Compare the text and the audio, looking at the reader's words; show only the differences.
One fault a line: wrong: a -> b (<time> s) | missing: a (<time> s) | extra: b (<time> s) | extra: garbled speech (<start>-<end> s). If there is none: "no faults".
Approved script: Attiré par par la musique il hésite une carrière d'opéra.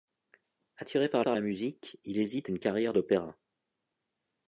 no faults